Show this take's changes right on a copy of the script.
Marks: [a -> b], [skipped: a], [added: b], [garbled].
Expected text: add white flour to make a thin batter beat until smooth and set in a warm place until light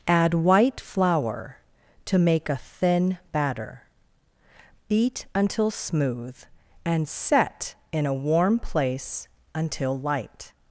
add white flour to make a thin batter beat until smooth and set in a warm place until light